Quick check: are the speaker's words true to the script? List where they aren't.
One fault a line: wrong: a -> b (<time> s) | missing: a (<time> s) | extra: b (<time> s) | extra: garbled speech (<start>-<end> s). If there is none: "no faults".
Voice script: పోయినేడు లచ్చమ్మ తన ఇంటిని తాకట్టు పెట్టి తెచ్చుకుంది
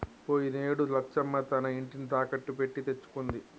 no faults